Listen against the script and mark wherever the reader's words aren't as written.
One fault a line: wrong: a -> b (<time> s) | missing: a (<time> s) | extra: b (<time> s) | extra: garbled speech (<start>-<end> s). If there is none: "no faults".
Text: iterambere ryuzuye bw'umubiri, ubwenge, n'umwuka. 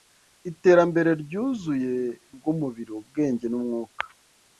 no faults